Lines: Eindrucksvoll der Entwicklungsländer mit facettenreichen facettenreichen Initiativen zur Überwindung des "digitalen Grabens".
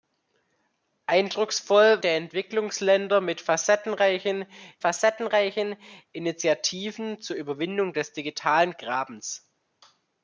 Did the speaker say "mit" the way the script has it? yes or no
yes